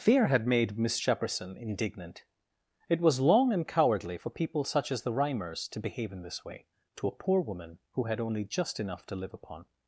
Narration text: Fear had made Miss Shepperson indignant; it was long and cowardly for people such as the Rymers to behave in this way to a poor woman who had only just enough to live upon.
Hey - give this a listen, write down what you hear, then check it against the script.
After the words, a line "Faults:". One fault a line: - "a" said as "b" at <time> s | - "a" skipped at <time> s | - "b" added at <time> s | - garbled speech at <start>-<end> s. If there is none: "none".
Fear had made Miss Shepperson indignant; it was long and cowardly for people such as the Rymers to behave in this way to a poor woman who had only just enough to live upon.
Faults:
none